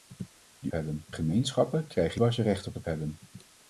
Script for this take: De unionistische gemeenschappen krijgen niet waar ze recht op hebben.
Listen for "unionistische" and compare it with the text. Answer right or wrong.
wrong